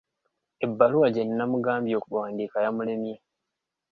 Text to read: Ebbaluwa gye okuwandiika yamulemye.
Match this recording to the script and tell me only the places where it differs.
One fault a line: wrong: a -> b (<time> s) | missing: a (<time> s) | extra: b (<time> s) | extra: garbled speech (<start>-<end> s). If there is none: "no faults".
extra: nnamugambye (1.3 s)